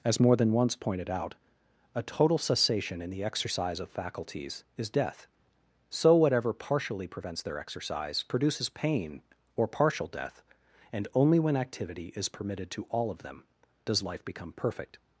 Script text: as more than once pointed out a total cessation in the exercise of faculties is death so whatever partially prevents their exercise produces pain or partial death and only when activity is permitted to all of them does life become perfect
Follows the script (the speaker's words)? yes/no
yes